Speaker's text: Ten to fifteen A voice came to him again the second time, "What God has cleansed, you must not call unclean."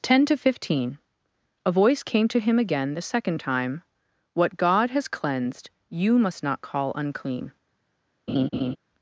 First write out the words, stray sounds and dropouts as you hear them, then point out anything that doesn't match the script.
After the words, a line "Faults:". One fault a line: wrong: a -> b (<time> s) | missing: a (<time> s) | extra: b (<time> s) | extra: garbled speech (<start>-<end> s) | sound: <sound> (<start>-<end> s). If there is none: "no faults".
Ten to fifteen A voice came to him again the second time, "What God has cleansed, you must not call unclean."
Faults:
sound: laugh (8.3-8.8 s)